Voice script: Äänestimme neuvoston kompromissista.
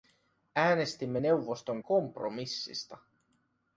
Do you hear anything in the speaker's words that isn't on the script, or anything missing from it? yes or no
no